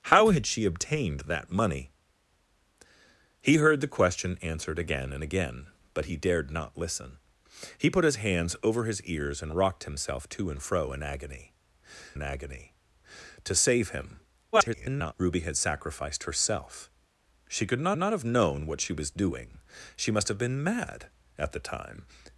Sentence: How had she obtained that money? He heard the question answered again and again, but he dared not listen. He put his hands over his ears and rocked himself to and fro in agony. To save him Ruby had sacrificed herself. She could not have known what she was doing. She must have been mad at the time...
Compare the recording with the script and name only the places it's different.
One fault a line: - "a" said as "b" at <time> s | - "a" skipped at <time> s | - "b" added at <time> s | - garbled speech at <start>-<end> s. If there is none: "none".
- "in agony" added at 12.1 s
- garbled speech at 14.5-15.1 s
- "not" added at 18.0 s